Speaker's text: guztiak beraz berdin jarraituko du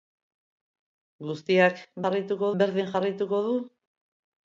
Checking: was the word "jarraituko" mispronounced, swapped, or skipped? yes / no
no